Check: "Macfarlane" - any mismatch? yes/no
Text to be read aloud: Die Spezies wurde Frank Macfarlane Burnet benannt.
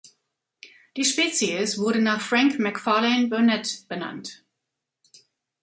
no